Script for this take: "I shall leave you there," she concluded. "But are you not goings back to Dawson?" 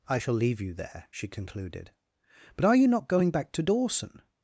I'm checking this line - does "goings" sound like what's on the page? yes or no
no